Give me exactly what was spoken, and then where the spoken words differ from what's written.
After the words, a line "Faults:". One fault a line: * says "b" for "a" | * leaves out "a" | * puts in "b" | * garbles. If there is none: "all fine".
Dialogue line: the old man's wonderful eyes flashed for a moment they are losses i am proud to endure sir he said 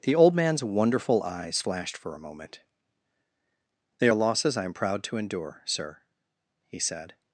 the old man's wonderful eyes flashed for a moment they are losses i am proud to endure sir he said
Faults:
all fine